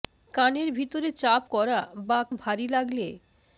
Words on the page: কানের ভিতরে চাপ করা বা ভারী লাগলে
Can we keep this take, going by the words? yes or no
yes